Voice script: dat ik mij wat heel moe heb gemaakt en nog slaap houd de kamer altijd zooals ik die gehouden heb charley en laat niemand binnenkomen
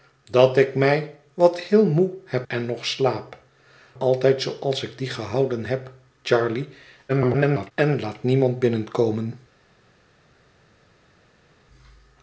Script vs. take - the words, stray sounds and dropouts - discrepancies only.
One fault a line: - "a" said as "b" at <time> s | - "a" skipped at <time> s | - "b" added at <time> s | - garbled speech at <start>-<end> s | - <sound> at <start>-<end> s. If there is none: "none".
- "gemaakt" skipped at 2.5 s
- "houd de kamer" skipped at 3.4 s
- garbled speech at 7.1-7.7 s